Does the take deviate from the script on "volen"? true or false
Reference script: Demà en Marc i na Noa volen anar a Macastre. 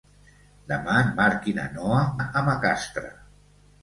true